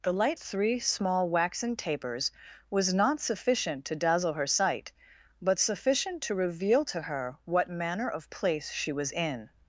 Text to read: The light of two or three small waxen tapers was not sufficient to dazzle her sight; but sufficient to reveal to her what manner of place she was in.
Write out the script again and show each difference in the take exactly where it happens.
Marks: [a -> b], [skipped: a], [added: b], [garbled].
The light [skipped: of two or] three small waxen tapers was not sufficient to dazzle her sight; but sufficient to reveal to her what manner of place she was in.